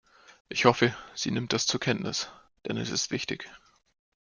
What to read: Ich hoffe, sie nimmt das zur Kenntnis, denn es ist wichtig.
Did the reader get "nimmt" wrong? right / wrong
right